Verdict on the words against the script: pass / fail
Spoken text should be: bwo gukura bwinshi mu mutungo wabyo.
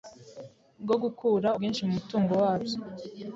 pass